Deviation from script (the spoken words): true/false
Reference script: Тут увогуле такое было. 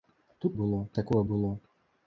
true